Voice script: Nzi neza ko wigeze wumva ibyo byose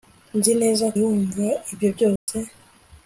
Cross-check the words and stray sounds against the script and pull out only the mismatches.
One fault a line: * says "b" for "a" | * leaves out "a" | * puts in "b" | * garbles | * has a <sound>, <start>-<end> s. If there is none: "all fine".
* leaves out "ko wigeze"
* has a dropout, 2.2-2.3 s